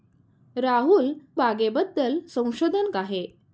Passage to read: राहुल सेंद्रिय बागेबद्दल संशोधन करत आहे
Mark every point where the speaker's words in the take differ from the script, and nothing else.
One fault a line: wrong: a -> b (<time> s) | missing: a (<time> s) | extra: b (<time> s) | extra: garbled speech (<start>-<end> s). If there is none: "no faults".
missing: सेंद्रिय (1.1 s)
missing: करत (2.9 s)